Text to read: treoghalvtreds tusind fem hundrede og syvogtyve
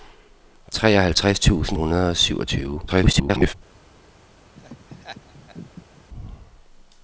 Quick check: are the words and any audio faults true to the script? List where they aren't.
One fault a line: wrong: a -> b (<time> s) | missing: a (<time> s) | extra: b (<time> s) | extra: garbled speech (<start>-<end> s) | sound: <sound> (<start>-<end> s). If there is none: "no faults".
missing: fem (1.8 s)
extra: garbled speech (2.9-3.5 s)
sound: laugh (4.5-6.0 s)